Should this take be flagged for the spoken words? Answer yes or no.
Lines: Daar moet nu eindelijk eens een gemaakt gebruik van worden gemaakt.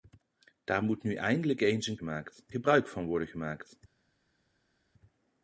no